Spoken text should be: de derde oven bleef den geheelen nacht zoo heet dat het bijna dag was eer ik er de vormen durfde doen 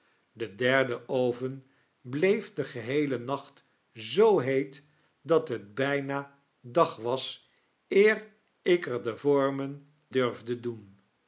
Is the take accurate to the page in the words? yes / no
yes